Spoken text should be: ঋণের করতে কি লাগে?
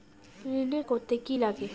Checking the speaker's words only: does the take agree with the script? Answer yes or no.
yes